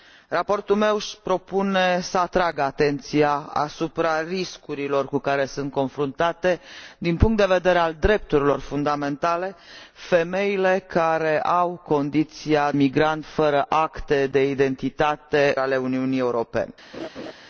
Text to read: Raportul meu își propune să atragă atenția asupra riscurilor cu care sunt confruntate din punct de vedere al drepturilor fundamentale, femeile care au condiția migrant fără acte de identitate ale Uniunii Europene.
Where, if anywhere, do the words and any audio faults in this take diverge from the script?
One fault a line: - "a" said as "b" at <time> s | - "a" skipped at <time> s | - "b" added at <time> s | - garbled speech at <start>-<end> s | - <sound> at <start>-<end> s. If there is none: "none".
- laugh at 16.9-17.3 s